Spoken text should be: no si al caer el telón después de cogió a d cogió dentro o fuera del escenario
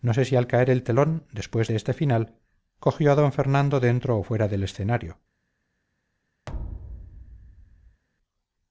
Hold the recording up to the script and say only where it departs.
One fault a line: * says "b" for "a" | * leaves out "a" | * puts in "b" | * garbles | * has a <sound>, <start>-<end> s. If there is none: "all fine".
* puts in "sé"
* puts in "este final"
* says "fernando" for "cogió"
* has a thud, 6.5-8.0 s